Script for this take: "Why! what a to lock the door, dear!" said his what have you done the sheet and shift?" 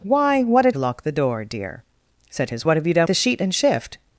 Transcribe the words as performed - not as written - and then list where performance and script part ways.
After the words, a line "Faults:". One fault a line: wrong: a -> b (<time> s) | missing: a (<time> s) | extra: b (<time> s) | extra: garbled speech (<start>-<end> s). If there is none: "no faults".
"Why! what a to lock the door, dear!" said his what have you done the sheet and shift?"
Faults:
no faults